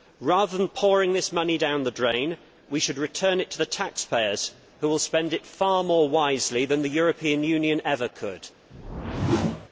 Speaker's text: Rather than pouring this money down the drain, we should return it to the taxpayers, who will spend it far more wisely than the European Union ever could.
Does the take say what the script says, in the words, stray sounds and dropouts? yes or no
no